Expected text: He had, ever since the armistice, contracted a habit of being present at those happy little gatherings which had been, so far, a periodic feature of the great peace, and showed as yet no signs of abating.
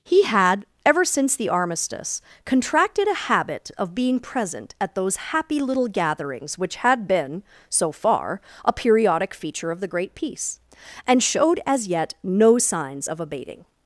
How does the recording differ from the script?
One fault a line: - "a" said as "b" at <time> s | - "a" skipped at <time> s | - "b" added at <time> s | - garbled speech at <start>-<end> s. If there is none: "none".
none